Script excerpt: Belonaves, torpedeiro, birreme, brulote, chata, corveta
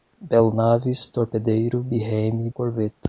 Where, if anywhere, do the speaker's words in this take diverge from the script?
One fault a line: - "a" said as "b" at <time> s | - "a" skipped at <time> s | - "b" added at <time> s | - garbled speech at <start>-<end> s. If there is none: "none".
- "brulote chata" skipped at 2.5 s